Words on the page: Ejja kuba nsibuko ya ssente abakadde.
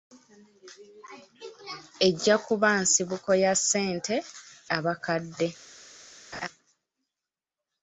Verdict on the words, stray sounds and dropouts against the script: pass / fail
fail